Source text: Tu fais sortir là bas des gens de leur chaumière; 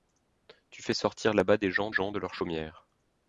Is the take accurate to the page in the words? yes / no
no